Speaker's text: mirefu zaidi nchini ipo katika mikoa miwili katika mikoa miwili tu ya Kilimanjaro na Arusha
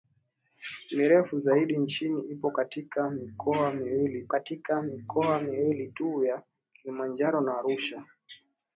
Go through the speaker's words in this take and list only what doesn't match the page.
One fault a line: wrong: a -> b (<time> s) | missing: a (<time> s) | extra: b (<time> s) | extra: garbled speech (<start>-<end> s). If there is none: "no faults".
no faults